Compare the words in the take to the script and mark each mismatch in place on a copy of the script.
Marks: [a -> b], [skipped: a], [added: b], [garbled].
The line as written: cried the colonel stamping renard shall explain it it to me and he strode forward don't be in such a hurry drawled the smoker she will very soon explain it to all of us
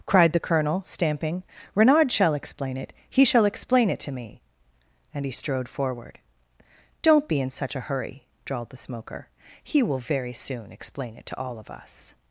cried the colonel stamping renard shall explain it [added: he shall explain] it to me and he strode forward don't be in such a hurry drawled the smoker [she -> he] will very soon explain it to all of us